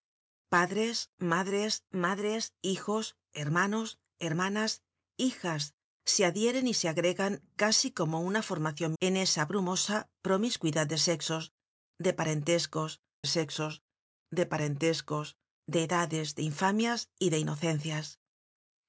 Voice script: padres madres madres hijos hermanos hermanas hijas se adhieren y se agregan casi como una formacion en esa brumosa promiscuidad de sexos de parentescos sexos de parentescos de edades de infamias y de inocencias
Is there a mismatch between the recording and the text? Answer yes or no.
no